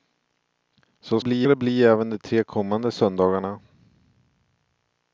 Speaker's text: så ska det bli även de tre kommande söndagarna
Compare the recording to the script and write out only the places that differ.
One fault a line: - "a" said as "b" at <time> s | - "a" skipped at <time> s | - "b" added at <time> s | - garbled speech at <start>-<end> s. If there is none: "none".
- "ska" said as "bli" at 1.2 s